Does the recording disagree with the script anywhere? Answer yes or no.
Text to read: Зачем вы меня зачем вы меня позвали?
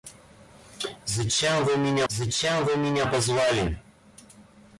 no